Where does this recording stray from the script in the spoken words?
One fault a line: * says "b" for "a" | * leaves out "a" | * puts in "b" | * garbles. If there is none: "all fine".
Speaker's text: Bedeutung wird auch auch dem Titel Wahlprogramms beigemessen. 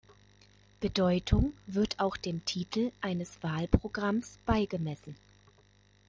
* leaves out "auch"
* puts in "eines"